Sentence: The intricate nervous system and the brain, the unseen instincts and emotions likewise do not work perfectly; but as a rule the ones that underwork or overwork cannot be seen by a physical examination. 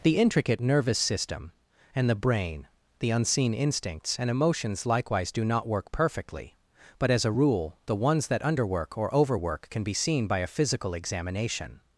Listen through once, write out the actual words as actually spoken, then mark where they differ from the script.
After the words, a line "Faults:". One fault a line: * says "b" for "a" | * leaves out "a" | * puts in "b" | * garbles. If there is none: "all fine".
The intricate nervous system and the brain, the unseen instincts and emotions likewise do not work perfectly; but as a rule the ones that underwork or overwork can be seen by a physical examination.
Faults:
* says "can" for "cannot"